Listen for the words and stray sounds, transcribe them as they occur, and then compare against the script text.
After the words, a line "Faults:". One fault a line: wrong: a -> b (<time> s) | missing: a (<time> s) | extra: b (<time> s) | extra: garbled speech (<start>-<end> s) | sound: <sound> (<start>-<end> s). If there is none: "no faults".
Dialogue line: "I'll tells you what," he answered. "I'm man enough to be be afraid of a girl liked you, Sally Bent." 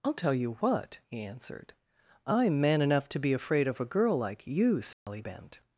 "I'll tell you what," he answered. "I'm man enough to be afraid of a girl like you, Sally Bent."
Faults:
wrong: tells -> tell (0.1 s)
missing: be (3.3 s)
wrong: liked -> like (4.2 s)
sound: dropout (4.9-5.1 s)